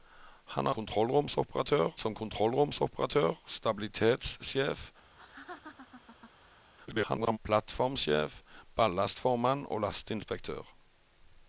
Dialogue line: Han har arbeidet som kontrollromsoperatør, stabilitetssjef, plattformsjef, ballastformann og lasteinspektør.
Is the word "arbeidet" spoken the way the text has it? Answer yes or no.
no